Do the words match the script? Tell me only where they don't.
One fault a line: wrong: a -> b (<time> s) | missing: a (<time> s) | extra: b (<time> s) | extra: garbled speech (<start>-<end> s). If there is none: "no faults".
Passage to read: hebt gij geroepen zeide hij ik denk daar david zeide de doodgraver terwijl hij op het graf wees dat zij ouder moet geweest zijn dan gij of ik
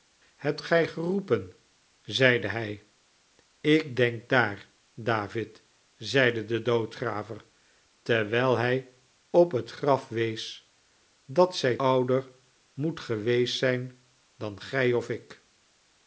no faults